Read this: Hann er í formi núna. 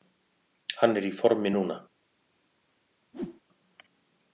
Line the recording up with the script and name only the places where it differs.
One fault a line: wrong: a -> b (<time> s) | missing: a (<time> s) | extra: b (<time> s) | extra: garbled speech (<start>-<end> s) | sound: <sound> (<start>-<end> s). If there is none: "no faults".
sound: whoosh (3.1-3.4 s)